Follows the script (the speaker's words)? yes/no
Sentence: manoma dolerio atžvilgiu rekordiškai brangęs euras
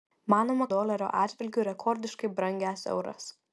yes